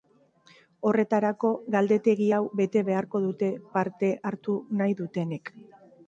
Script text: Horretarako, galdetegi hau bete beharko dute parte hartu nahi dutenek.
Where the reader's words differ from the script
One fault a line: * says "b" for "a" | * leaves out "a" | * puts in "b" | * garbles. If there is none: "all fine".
all fine